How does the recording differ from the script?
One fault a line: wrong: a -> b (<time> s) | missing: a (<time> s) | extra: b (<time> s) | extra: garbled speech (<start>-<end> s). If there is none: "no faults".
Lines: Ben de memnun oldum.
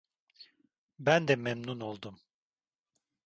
no faults